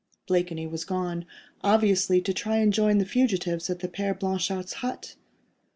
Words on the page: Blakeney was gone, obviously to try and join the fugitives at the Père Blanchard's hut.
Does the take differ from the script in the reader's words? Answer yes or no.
no